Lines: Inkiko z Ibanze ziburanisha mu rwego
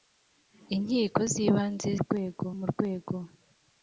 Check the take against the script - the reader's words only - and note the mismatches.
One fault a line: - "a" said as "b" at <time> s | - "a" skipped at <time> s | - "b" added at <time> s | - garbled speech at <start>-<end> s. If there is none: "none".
- "ziburanisha" said as "rwego" at 2.0 s